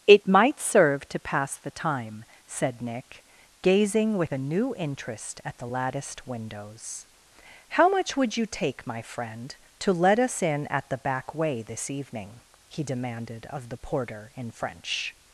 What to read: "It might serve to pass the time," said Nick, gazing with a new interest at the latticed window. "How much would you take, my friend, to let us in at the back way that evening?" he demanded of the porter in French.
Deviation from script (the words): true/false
true